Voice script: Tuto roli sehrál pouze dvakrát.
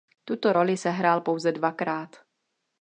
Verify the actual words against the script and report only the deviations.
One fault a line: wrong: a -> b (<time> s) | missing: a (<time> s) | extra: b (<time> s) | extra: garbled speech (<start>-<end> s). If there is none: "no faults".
no faults